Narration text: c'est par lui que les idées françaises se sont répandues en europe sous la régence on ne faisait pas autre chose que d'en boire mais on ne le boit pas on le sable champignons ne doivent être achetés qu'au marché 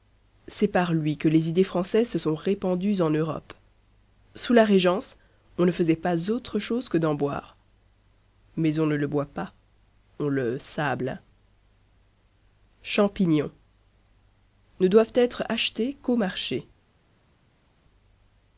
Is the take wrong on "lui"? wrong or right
right